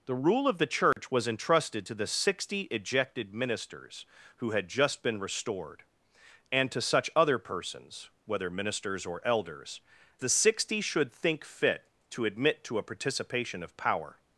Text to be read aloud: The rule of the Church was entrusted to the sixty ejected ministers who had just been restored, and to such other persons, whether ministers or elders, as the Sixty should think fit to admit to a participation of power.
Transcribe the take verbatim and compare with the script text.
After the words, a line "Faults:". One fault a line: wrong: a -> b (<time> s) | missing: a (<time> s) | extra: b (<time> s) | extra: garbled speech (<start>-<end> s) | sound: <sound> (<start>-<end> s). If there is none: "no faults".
The rule of the Church was entrusted to the sixty ejected ministers who had just been restored, and to such other persons, whether ministers or elders, the Sixty should think fit to admit to a participation of power.
Faults:
sound: dropout (0.9-1.0 s)
missing: as (9.8 s)